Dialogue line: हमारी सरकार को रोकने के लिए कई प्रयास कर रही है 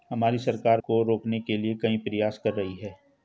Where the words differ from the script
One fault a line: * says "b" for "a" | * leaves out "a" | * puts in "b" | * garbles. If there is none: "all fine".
all fine